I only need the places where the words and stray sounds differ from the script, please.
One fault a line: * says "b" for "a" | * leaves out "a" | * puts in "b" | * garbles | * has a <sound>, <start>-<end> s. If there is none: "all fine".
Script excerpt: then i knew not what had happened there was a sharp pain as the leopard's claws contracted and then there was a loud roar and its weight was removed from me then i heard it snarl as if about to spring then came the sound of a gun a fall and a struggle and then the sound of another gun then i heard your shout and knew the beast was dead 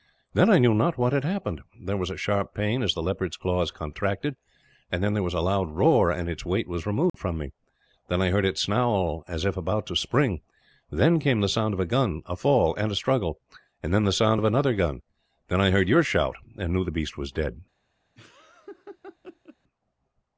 * has a dropout, 7.1-7.1 s
* has a laugh, 18.1-19.6 s